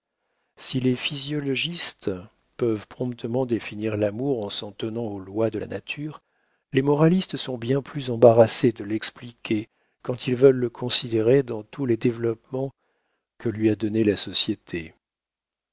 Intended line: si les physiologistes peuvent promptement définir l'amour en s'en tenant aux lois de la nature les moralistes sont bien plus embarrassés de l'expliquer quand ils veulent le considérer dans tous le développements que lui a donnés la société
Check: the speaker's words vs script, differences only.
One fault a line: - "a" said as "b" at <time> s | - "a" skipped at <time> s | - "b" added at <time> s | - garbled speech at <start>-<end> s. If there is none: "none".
- "le" said as "les" at 11.8 s